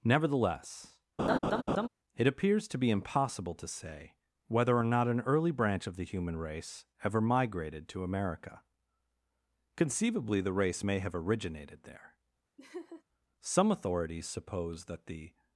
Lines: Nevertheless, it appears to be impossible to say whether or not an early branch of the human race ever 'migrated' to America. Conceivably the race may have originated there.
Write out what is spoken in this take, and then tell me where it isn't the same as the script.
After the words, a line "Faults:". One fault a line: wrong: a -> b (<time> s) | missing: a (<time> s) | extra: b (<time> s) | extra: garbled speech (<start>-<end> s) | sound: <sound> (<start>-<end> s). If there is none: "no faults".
Nevertheless, it appears to be impossible to say whether or not an early branch of the human race ever 'migrated' to America. Conceivably the race may have originated there. Some authorities suppose that the
Faults:
sound: laugh (1.2-1.9 s)
sound: laugh (12.6-13.0 s)
extra: Some authorities suppose that the (13.4 s)